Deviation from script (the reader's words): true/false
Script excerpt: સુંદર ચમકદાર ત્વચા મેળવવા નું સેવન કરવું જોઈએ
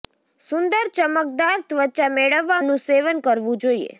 false